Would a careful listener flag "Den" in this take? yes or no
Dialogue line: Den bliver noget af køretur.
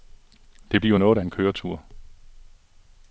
yes